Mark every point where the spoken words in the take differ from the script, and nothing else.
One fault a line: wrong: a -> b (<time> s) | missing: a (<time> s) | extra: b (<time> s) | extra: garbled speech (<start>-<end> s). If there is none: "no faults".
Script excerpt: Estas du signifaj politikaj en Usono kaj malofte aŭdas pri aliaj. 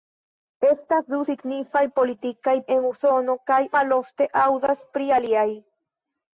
no faults